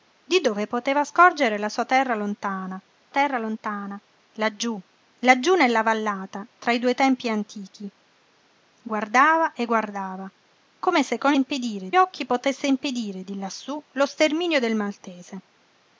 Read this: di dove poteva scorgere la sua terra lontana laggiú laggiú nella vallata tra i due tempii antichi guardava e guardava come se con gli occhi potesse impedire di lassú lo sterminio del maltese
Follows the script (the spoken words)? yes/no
no